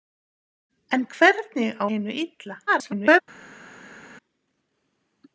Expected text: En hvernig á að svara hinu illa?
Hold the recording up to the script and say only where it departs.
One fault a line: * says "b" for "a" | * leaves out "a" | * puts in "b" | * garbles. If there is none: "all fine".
* leaves out "að svara"
* garbles